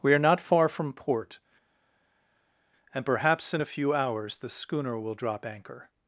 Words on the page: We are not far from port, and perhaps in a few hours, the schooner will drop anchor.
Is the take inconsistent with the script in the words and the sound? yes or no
no